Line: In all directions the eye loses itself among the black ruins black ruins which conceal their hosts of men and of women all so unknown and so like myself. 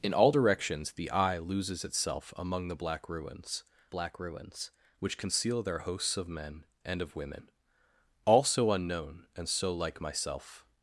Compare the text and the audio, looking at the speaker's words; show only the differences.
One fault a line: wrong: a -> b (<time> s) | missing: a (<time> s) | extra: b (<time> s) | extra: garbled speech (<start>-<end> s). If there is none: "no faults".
no faults